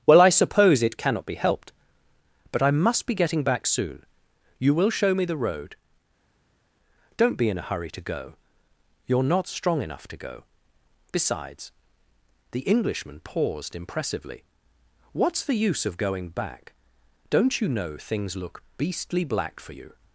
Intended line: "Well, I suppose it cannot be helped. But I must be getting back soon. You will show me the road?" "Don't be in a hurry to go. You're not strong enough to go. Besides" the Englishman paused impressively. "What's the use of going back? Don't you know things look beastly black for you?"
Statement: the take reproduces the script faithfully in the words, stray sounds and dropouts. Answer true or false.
true